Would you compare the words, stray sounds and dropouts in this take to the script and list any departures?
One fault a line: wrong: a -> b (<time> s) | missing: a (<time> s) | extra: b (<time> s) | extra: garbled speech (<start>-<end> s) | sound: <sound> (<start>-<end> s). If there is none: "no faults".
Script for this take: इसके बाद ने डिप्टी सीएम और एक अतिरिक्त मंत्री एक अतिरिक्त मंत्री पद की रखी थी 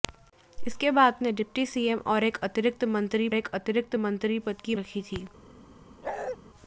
sound: bark (6.0-6.4 s)